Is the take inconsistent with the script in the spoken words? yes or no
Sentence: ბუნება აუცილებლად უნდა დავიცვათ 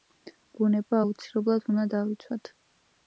no